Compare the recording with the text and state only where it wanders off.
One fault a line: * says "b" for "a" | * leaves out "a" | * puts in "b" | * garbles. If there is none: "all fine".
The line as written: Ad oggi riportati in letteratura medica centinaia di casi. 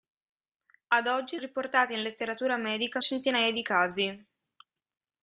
all fine